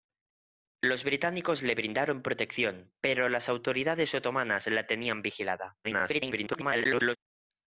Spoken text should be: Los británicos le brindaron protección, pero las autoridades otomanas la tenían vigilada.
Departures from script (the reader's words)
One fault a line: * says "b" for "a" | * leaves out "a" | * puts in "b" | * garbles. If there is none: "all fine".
* garbles